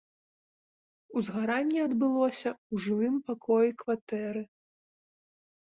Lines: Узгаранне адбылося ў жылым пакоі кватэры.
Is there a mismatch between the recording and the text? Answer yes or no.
no